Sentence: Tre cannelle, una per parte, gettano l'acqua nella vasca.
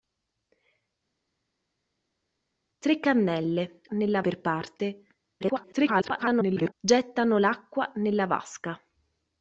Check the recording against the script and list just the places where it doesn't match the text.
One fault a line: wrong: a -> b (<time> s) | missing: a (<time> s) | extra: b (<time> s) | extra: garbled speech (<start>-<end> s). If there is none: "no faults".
wrong: una -> nella (3.9 s)
extra: garbled speech (5.4-6.7 s)